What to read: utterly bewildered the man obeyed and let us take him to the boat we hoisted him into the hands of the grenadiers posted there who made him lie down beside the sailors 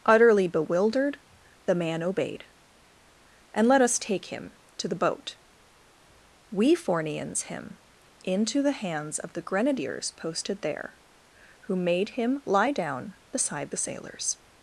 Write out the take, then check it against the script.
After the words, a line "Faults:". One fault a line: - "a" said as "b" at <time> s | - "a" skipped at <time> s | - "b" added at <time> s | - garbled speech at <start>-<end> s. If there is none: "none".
utterly bewildered the man obeyed and let us take him to the boat we fornians him into the hands of the grenadiers posted there who made him lie down beside the sailors
Faults:
- "hoisted" said as "fornians" at 6.7 s